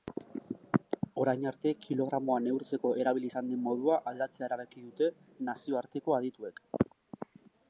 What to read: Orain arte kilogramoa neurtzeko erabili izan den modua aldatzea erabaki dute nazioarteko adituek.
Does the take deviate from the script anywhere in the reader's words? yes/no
no